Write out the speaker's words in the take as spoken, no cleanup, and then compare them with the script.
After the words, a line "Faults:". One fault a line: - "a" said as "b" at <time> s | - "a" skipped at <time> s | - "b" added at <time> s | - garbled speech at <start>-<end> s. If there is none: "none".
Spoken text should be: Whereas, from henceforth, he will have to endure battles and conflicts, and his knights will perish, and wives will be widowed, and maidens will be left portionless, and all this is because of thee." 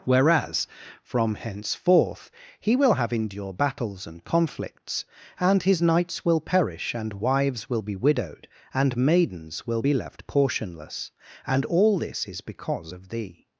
Whereas, from henceforth, he will have endure battles and conflicts, and his knights will perish, and wives will be widowed, and maidens will be left portionless, and all this is because of thee."
Faults:
- "to" skipped at 3.1 s